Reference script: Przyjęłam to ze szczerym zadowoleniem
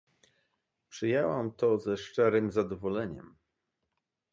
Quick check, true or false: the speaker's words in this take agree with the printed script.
true